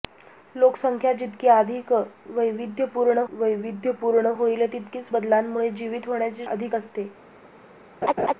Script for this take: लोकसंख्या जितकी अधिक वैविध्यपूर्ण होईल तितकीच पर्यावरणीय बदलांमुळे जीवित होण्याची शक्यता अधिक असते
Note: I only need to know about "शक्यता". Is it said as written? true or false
false